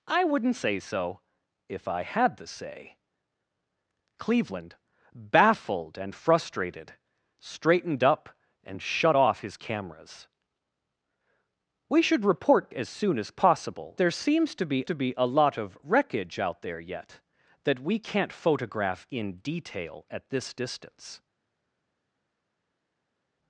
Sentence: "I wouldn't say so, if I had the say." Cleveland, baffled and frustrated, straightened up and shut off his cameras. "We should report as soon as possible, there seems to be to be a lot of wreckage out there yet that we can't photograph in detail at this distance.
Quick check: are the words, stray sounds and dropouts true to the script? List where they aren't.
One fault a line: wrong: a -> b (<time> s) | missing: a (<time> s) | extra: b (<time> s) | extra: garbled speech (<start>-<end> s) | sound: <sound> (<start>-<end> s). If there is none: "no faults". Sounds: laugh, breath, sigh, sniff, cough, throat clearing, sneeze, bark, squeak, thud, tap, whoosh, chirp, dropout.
no faults